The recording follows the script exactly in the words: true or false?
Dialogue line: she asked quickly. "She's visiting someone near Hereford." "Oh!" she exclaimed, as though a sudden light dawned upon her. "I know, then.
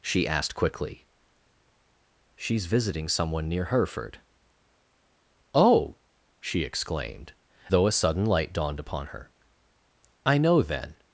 false